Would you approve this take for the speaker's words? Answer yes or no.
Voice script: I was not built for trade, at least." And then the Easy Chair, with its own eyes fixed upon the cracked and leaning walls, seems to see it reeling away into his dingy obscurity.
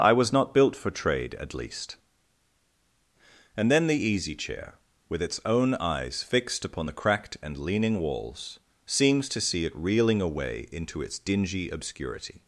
no